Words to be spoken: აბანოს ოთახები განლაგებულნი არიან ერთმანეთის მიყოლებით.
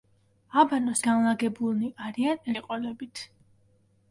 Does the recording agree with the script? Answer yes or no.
no